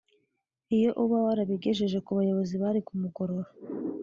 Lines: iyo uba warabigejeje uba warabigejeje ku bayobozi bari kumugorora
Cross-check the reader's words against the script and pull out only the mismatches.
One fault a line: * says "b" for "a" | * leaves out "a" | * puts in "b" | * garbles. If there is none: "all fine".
* leaves out "uba warabigejeje"